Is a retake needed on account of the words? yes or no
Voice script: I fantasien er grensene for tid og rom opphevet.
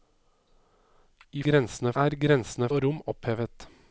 yes